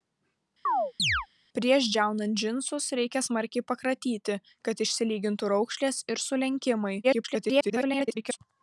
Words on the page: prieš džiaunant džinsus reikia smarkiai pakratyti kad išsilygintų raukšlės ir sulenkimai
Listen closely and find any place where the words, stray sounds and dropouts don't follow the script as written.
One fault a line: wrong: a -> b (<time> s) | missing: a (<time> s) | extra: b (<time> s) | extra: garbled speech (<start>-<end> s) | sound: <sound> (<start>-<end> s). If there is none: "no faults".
sound: chirp (0.7-1.3 s)
extra: garbled speech (7.0-8.4 s)